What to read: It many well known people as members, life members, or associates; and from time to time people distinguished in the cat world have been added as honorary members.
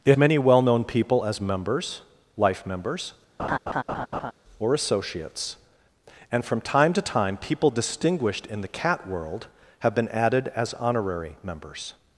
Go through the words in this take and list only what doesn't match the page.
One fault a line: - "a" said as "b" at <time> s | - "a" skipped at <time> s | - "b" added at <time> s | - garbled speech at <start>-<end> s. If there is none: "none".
none